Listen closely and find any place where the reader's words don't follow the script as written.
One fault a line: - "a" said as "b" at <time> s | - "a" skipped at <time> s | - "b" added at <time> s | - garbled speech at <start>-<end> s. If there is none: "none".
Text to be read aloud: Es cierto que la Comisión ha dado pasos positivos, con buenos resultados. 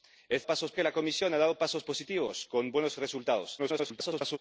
- "cierto" said as "pasos" at 0.5 s
- garbled speech at 3.6-4.4 s